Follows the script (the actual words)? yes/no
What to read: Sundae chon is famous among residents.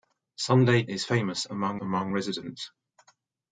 no